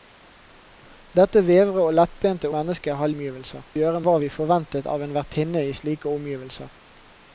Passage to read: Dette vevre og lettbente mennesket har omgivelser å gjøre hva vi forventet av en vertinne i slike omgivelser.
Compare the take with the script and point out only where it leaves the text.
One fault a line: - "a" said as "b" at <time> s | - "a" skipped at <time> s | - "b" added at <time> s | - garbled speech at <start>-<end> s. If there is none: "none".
none